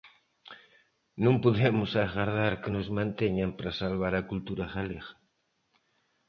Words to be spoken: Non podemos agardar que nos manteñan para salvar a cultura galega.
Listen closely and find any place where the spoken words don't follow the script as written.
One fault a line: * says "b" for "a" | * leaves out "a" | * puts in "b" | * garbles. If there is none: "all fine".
all fine